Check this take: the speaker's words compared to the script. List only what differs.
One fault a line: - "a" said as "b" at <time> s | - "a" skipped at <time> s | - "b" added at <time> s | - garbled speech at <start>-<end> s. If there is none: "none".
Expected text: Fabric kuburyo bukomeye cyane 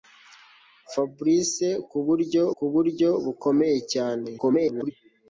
- "kuburyo" added at 2.6 s
- garbled speech at 4.4-4.9 s